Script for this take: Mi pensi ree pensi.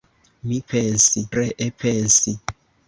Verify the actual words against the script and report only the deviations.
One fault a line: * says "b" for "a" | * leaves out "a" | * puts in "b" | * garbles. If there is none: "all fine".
all fine